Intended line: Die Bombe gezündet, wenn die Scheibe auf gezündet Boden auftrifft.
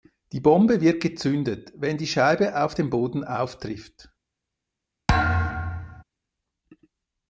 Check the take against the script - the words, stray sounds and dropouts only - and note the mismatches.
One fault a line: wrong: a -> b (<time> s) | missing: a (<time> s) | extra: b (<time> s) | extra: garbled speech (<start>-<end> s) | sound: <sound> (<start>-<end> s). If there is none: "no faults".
extra: wird (0.8 s)
wrong: gezündet -> dem (2.7 s)
sound: thud (5.1-6.0 s)